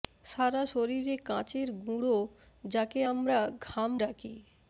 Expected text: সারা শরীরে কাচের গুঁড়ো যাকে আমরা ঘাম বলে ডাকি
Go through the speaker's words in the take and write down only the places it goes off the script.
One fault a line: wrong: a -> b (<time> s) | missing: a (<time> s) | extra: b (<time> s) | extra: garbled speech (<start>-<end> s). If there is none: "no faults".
missing: বলে (3.9 s)